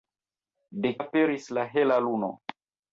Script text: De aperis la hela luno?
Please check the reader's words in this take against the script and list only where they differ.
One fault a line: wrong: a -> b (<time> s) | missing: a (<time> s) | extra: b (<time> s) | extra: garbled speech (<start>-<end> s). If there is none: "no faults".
no faults